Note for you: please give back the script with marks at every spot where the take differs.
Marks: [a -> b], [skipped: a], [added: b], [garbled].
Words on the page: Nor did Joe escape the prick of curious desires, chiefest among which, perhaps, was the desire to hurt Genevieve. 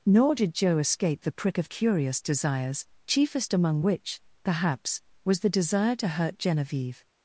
Nor did Joe escape the prick of curious desires, chiefest among which, perhaps, was the desire to hurt Genevieve.